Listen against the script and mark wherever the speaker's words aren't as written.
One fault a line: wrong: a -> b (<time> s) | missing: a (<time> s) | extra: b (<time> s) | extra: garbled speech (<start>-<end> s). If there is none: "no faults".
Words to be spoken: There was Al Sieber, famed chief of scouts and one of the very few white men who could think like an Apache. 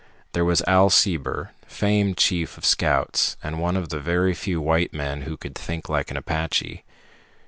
no faults